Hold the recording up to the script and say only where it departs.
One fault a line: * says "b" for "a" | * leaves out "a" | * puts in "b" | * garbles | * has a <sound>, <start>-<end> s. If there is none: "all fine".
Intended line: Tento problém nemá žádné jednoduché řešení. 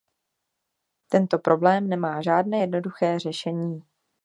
all fine